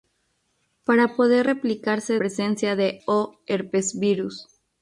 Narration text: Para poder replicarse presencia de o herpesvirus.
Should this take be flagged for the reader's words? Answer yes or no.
no